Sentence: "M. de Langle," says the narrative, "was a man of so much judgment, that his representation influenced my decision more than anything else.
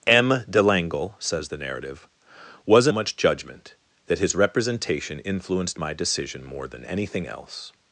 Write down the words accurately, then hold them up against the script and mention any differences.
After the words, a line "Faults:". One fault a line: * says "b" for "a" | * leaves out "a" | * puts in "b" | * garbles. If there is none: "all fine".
"M. de Langle," says the narrative, "was a much judgment, that his representation influenced my decision more than anything else.
Faults:
* leaves out "man of so"